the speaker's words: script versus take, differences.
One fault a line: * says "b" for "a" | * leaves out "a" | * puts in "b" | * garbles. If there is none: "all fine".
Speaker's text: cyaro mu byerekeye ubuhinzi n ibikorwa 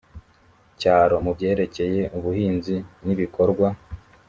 all fine